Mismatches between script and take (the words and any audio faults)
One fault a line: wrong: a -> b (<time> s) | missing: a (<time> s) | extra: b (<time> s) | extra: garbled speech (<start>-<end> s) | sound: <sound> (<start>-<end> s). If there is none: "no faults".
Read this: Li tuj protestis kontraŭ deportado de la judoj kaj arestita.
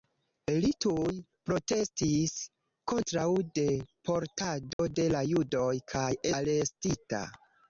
sound: dropout (4.7-4.8 s)